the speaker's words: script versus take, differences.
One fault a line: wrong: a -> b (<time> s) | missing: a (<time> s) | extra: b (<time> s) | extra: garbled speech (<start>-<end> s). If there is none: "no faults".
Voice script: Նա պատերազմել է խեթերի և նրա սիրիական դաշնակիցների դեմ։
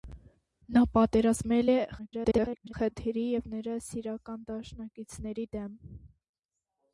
extra: garbled speech (2.0-2.7 s)